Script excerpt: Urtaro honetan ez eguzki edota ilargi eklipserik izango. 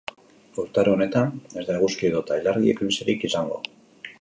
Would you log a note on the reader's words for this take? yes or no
yes